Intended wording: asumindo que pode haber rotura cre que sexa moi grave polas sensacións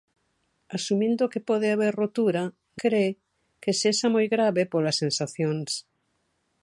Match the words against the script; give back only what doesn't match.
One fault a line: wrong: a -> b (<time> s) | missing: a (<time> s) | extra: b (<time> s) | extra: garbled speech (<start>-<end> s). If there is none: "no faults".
no faults